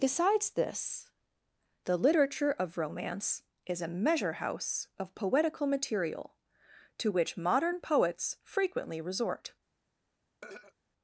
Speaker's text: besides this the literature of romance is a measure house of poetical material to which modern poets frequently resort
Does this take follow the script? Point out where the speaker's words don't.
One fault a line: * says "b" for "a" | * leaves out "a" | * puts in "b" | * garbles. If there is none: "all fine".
all fine